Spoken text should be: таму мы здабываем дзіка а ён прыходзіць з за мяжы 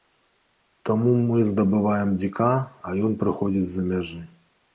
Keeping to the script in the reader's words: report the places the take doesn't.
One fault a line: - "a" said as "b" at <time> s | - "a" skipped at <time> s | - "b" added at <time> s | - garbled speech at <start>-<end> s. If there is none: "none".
none